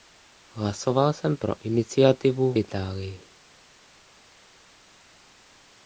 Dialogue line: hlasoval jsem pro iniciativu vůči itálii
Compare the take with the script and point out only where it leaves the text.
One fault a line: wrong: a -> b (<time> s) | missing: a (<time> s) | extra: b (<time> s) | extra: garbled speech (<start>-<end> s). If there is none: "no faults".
missing: vůči (2.5 s)